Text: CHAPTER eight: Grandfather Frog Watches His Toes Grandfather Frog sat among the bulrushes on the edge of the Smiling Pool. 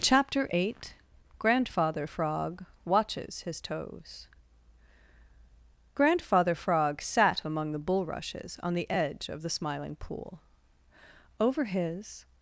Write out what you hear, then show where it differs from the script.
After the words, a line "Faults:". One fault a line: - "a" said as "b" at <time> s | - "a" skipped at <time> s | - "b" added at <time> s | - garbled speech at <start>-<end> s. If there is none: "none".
CHAPTER eight: Grandfather Frog Watches His Toes Grandfather Frog sat among the bulrushes on the edge of the Smiling Pool. Over his
Faults:
- "Over his" added at 11.4 s